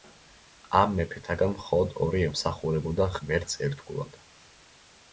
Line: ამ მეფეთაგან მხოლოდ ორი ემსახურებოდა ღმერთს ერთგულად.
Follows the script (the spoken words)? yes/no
yes